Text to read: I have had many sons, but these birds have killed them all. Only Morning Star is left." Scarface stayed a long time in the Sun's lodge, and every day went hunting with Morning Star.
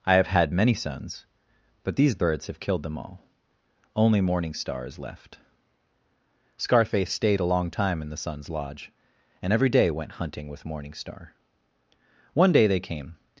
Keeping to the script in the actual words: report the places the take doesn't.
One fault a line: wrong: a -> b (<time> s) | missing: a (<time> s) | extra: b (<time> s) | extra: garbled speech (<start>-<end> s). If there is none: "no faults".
extra: One day they came (12.3 s)